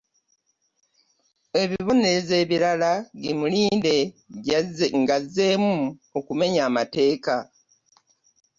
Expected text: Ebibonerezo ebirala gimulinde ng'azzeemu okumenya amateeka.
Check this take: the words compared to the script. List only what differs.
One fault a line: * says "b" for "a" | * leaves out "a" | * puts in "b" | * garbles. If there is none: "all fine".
all fine